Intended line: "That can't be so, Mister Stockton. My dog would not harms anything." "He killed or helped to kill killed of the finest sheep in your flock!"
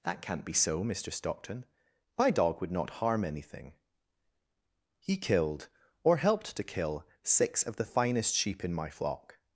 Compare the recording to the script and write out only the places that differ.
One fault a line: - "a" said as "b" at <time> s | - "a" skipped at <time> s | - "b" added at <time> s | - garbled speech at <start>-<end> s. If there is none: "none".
- "harms" said as "harm" at 3.0 s
- "killed" said as "six" at 7.2 s
- "your" said as "my" at 8.7 s